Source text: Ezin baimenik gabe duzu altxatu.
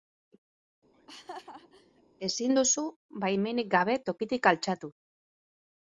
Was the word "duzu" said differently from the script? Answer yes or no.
yes